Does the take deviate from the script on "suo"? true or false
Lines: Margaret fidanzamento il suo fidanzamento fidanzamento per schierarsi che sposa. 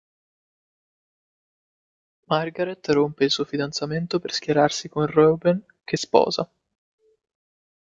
false